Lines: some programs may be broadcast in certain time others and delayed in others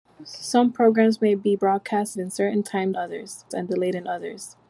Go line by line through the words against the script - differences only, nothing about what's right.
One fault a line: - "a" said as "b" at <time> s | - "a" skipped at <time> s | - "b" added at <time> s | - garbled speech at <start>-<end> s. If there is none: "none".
none